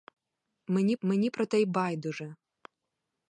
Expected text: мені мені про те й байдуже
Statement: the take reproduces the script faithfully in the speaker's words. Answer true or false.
true